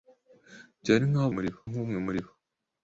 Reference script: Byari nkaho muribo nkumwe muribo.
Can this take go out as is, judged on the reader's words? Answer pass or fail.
pass